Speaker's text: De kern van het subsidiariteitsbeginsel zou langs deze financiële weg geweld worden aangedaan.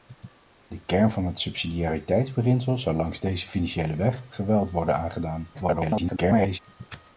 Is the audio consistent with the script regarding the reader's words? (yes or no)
no